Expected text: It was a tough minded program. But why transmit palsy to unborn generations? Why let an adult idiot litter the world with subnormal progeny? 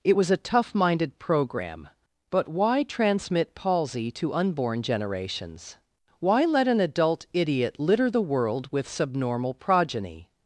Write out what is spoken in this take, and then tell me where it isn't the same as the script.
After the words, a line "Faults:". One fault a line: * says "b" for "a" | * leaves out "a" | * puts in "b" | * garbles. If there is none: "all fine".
It was a tough minded program. But why transmit palsy to unborn generations? Why let an adult idiot litter the world with subnormal progeny?
Faults:
all fine